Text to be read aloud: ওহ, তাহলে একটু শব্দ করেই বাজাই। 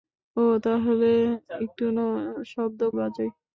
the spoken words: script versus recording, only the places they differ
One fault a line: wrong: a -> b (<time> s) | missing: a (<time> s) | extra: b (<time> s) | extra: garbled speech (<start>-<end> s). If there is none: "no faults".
missing: করেই (2.8 s)